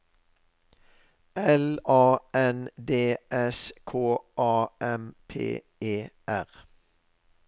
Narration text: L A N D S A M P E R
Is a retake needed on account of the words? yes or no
yes